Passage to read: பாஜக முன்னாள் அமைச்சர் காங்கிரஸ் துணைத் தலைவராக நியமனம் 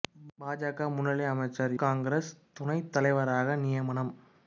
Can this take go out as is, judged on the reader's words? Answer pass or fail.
pass